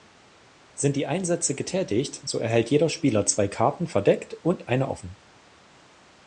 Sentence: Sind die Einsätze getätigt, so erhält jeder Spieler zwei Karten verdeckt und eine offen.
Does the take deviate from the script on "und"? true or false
false